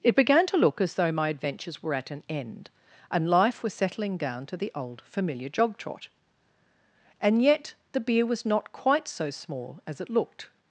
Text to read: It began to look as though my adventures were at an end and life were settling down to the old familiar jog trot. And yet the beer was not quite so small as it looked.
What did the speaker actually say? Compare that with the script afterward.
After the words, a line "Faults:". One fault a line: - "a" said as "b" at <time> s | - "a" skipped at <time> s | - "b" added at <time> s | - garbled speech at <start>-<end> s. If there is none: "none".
It began to look as though my adventures were at an end and life was settling down to the old familiar jog trot. And yet the beer was not quite so small as it looked.
Faults:
- "were" said as "was" at 3.6 s